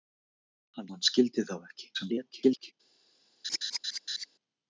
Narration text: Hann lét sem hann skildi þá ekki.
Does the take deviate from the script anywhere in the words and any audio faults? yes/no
yes